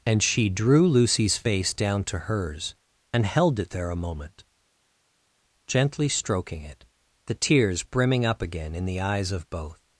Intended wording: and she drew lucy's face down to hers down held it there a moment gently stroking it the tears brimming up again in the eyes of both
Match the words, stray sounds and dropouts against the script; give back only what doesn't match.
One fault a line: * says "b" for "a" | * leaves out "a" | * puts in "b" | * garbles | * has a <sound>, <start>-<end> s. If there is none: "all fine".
* says "and" for "down"